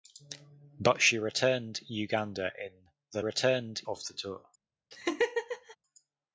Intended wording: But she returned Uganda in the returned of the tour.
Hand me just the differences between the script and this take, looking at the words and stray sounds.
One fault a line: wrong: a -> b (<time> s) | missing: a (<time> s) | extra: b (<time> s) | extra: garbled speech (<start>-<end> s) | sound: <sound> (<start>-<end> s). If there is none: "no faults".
sound: laugh (4.9-5.8 s)